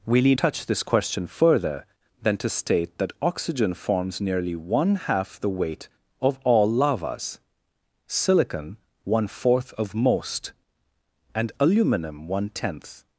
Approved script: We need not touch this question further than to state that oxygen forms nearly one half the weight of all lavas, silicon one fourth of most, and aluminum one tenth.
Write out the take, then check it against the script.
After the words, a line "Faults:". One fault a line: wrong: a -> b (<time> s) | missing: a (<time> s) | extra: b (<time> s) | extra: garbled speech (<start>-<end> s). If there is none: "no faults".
We need touch this question further than to state that oxygen forms nearly one half the weight of all lavas, silicon one fourth of most, and aluminum one tenth.
Faults:
missing: not (0.4 s)